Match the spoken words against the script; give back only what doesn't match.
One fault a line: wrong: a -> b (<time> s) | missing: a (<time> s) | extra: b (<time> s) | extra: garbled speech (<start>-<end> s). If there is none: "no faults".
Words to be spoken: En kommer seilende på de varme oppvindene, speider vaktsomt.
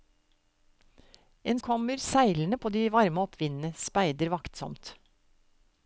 no faults